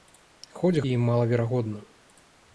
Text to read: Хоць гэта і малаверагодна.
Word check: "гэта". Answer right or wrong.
wrong